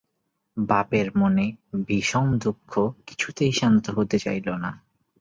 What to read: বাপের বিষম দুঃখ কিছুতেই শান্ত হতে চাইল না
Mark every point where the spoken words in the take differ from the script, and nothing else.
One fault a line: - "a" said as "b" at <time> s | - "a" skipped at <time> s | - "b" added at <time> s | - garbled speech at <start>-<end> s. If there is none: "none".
- "মনে" added at 1.1 s